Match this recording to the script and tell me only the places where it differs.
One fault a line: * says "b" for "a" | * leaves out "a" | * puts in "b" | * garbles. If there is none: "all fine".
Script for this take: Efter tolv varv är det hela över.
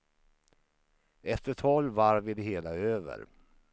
all fine